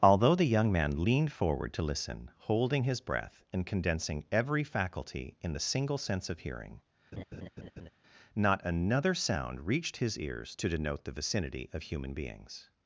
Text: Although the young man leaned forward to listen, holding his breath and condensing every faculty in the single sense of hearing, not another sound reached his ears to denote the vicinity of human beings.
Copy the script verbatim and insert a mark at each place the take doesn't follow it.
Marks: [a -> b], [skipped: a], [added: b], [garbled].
Although the young man leaned forward to listen, holding his breath and condensing every faculty in the single sense of hearing, not another sound reached his ears to denote the vicinity of human beings.